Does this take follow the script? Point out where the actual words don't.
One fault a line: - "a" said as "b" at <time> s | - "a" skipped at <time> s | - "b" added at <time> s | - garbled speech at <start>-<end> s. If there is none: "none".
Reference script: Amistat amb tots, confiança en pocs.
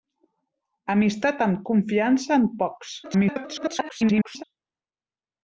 - "tots" skipped at 1.6 s
- garbled speech at 3.0-4.4 s